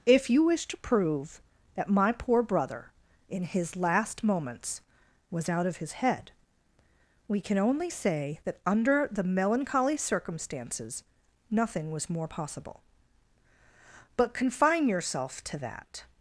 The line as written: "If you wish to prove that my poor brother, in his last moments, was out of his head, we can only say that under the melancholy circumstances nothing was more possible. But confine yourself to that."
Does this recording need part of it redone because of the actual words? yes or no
no